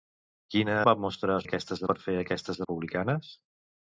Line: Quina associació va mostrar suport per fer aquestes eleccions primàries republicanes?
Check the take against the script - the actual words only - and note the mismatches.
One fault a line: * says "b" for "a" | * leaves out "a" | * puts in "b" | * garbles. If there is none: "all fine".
* leaves out "associació"
* says "aquestes" for "suport"
* leaves out "eleccions primàries"